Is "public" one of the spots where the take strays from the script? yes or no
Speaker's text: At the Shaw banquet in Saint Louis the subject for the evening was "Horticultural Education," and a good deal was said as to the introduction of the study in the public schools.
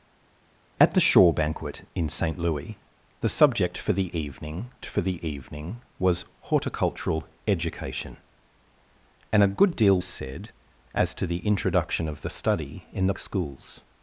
yes